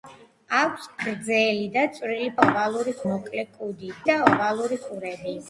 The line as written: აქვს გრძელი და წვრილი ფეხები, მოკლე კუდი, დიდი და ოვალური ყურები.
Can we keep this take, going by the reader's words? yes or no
no